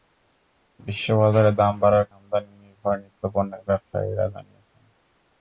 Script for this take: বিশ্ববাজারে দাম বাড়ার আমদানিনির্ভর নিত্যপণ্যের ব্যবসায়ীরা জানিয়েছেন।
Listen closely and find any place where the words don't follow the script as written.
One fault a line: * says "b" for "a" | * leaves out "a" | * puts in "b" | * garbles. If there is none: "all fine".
all fine